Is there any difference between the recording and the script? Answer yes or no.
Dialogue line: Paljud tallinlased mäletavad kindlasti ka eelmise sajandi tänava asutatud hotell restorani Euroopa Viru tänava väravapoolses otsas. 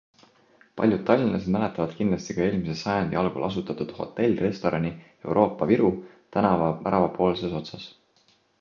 yes